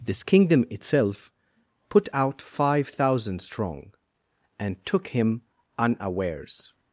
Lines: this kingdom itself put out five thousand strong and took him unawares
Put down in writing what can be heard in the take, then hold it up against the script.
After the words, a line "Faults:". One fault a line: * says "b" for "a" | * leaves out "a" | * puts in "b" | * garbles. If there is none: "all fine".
this kingdom itself put out five thousand strong and took him unawares
Faults:
all fine